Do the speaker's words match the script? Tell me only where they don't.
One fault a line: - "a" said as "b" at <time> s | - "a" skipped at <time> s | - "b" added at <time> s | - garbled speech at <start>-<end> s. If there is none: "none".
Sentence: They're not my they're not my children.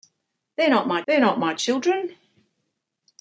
none